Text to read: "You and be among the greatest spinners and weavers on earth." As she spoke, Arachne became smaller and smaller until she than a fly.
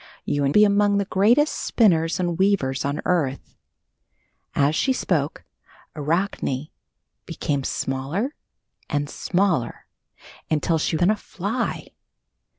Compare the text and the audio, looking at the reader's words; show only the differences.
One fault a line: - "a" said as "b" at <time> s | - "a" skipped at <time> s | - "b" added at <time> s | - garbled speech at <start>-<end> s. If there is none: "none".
none